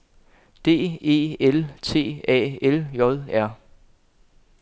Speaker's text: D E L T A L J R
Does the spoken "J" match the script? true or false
true